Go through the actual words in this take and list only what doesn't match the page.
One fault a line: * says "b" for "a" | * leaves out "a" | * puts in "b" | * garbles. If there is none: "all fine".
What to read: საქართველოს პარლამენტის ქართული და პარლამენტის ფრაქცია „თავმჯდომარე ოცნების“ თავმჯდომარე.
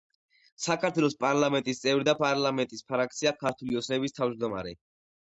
* says "წევრი" for "ქართული"
* says "ქართული" for "თავმჯდომარე"